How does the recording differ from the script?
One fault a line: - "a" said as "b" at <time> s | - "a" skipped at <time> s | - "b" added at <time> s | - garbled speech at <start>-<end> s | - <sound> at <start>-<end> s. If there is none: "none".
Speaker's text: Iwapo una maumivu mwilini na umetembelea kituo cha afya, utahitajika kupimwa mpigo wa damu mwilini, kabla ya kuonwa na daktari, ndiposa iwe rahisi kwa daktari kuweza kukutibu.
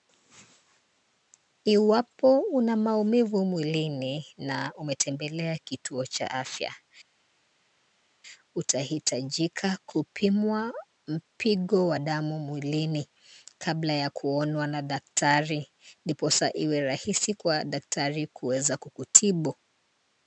none